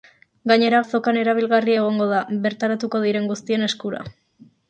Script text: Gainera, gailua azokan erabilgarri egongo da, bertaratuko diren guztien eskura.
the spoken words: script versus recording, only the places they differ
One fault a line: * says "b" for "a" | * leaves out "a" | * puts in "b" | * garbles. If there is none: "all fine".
* leaves out "gailua"